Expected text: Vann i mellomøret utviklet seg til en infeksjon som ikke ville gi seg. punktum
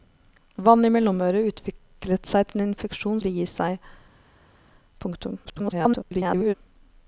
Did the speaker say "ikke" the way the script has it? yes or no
no